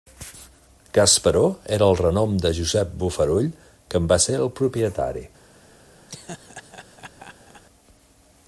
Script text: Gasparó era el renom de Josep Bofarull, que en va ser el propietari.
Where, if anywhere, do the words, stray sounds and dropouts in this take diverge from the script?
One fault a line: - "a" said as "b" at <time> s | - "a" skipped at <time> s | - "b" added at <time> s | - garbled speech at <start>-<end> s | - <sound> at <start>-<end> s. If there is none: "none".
- laugh at 6.1-7.6 s